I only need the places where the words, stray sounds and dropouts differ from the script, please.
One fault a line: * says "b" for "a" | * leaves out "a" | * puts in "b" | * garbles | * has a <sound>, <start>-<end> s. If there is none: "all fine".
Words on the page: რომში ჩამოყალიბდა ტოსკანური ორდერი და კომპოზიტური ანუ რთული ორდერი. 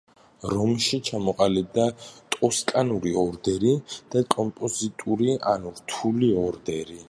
all fine